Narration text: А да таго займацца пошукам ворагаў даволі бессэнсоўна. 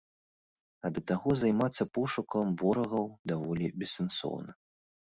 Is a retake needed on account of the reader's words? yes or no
no